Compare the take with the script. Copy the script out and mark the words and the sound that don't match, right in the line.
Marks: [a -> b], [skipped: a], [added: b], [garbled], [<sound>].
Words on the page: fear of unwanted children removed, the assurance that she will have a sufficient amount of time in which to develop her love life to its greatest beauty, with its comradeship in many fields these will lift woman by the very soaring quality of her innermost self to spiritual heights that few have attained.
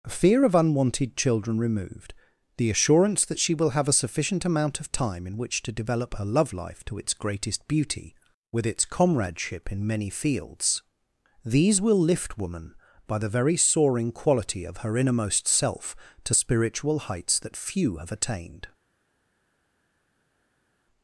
fear of unwanted children removed, the assurance that she will have a sufficient amount of time in which to develop her love life to its greatest beauty, with its comradeship in many fields these will lift woman by the very soaring quality of her innermost self to spiritual heights that few have attained.